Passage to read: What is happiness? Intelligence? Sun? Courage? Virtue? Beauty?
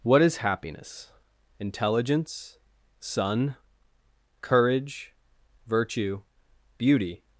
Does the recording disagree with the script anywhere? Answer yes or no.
no